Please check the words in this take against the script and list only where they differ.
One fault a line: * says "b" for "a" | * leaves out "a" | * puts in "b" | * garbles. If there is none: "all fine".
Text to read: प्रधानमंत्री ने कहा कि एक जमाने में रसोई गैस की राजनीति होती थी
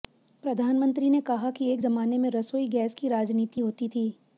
all fine